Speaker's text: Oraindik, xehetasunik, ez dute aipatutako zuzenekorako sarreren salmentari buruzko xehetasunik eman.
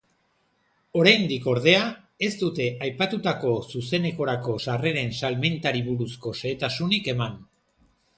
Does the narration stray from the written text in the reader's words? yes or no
yes